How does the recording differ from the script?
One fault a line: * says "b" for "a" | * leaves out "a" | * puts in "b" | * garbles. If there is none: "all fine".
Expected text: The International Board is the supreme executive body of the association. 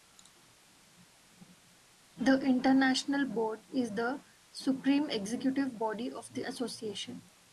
all fine